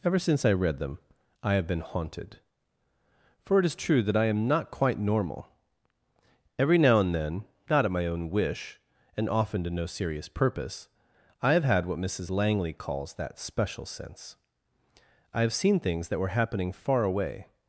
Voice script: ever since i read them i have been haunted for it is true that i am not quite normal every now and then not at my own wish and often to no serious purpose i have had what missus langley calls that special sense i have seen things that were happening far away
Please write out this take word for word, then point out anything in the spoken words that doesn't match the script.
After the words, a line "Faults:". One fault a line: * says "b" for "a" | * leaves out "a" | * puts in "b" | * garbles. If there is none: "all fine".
ever since i read them i have been haunted for it is true that i am not quite normal every now and then not at my own wish and often to no serious purpose i have had what missus langley calls that special sense i have seen things that were happening far away
Faults:
all fine